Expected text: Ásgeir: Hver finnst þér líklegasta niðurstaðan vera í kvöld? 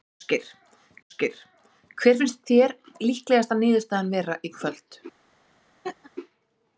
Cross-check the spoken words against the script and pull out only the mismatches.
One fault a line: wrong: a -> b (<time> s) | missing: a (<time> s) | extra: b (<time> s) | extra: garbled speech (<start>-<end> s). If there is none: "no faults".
extra: ásgeir (1.1 s)